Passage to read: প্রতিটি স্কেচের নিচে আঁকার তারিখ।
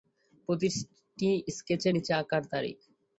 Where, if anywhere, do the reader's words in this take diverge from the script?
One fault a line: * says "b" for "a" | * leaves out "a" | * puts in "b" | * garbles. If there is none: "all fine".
all fine